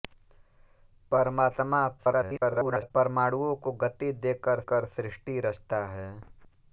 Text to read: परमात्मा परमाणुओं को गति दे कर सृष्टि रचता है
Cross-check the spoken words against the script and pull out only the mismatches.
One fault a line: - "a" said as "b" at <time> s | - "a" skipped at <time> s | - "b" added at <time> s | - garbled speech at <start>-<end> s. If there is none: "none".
- garbled speech at 2.0-2.9 s
- "कर" added at 4.7 s